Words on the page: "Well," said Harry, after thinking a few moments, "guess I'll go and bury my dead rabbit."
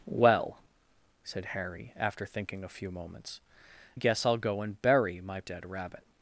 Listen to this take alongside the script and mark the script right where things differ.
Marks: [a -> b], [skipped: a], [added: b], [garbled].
"Well," said Harry, after thinking a few moments, "guess I'll go and bury my dead rabbit."